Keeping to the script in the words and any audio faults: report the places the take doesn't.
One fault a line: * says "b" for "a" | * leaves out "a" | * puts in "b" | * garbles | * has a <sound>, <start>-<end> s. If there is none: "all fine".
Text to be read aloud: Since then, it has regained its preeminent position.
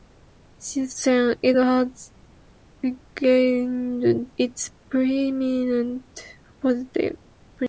all fine